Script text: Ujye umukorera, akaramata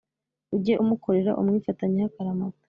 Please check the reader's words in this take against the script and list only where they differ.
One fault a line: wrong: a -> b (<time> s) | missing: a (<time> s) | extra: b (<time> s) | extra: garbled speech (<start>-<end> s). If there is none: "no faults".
extra: umwifatanyeho (1.4 s)